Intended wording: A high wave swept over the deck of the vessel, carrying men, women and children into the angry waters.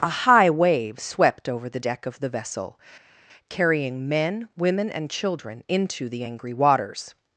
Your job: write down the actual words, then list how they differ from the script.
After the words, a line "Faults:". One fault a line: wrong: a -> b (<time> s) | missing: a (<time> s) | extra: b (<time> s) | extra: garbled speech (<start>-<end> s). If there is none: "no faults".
A high wave swept over the deck of the vessel, carrying men, women and children into the angry waters.
Faults:
no faults